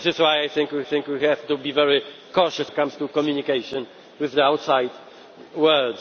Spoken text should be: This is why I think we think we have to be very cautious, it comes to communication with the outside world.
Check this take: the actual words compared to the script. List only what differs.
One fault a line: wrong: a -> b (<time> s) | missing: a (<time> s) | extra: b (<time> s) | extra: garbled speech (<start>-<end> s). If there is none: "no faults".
no faults